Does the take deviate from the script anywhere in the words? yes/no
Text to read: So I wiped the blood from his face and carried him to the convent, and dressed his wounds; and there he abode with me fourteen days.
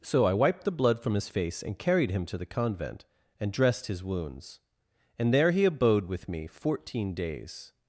no